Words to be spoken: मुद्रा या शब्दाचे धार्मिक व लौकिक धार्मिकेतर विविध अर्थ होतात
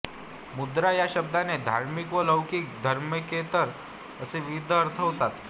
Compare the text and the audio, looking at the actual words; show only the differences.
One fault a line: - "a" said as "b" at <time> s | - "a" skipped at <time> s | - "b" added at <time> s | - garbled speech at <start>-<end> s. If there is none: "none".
- "असे" added at 4.2 s